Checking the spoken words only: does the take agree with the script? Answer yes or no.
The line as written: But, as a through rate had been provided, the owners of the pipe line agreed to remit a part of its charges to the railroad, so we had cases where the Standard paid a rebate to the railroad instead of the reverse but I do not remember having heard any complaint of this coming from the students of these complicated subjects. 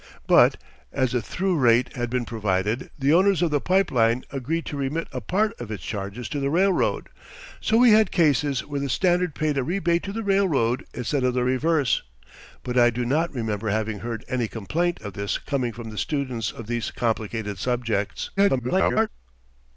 no